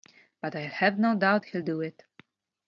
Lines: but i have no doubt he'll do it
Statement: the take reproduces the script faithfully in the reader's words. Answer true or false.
true